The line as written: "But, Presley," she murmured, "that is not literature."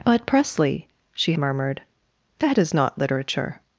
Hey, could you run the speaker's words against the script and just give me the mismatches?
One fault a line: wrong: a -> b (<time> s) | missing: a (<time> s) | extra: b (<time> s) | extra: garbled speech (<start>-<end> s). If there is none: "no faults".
no faults